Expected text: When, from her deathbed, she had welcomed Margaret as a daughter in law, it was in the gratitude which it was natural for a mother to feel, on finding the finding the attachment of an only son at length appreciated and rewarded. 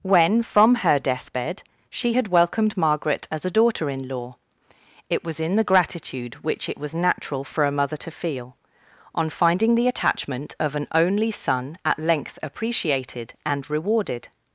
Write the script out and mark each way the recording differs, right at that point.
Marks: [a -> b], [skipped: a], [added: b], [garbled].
When, from her deathbed, she had welcomed Margaret as a daughter in law, it was in the gratitude which it was natural for a mother to feel, on finding the [skipped: finding the] attachment of an only son at length appreciated and rewarded.